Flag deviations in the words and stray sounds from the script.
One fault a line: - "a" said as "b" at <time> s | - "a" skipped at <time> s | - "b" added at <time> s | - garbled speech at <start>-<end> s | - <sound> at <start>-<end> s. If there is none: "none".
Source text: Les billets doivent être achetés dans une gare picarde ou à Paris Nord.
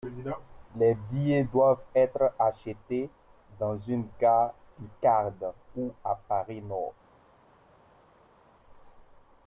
none